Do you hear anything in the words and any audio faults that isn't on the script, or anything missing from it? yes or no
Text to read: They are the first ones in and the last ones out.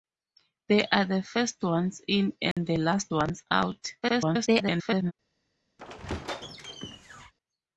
yes